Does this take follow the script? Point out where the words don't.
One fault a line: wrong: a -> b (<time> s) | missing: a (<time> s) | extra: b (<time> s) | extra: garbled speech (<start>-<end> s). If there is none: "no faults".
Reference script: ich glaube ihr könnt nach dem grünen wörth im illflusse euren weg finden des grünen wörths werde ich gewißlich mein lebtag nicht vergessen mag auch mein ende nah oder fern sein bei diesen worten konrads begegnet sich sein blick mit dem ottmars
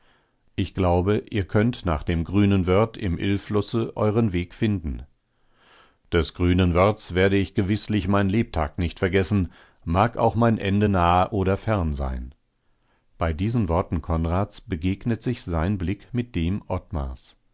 no faults